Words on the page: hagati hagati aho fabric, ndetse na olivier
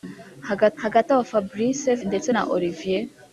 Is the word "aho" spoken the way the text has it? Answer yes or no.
yes